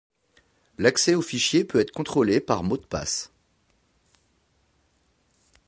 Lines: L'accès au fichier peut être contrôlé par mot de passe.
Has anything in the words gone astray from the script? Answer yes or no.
no